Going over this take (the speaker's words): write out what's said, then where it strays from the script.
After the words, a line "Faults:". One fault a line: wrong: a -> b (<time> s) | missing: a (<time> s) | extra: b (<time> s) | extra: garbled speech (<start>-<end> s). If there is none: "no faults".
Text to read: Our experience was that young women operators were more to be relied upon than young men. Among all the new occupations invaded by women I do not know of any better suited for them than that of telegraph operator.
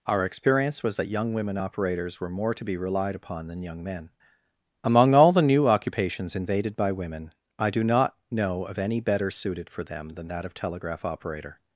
Our experience was that young women operators were more to be relied upon than young men. Among all the new occupations invaded by women I do not know of any better suited for them than that of telegraph operator.
Faults:
no faults